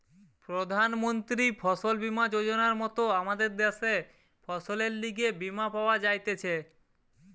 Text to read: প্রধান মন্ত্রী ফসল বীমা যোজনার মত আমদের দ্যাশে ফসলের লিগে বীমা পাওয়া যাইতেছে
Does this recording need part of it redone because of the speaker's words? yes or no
no